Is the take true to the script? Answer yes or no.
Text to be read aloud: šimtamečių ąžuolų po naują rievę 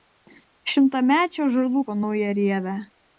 yes